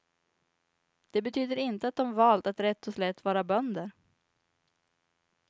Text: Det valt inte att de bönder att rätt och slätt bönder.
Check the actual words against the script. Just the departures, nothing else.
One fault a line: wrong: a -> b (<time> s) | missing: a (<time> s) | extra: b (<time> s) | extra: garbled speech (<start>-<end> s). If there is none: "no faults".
wrong: valt -> betyder (1.2 s)
wrong: bönder -> valt (2.1 s)
extra: vara (3.2 s)